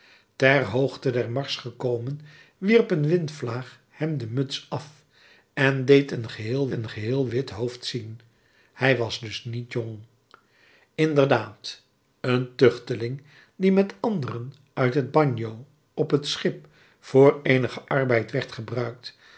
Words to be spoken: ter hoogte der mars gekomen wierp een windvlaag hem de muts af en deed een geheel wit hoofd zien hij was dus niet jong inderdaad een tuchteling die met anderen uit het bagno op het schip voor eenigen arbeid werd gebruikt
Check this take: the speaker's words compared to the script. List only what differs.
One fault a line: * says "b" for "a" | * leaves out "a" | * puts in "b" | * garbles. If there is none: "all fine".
* puts in "een geheel"